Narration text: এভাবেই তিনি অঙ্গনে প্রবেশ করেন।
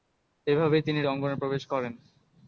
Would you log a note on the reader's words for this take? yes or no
no